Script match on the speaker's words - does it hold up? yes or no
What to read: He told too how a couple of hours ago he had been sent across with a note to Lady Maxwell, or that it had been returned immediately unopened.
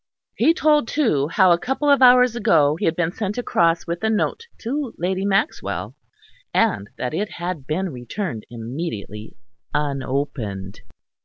no